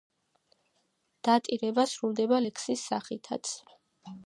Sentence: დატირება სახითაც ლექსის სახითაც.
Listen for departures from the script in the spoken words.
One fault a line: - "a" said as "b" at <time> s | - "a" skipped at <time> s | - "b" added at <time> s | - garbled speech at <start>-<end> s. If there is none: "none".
- "სახითაც" said as "სრულდება" at 1.9 s